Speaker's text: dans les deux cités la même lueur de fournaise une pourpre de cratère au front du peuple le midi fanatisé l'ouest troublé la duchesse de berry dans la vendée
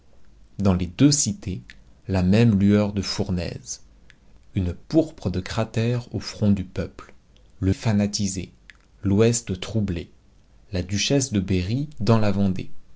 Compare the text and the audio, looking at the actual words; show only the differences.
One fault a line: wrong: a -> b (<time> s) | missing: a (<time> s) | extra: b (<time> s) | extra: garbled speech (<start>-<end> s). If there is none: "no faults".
missing: midi (7.7 s)